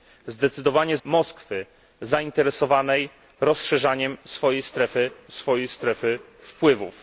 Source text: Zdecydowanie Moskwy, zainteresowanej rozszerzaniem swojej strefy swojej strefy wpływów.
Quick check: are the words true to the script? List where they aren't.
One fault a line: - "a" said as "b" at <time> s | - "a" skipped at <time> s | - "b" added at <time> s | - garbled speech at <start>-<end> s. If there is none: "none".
none